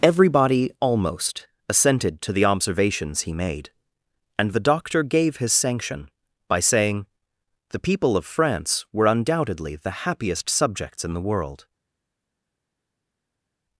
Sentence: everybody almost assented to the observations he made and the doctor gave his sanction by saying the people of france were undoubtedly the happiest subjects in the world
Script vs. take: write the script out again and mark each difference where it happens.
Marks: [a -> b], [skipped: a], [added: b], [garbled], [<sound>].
everybody almost assented to the observations he made and the doctor gave his sanction by saying the people of france were undoubtedly the happiest subjects in the world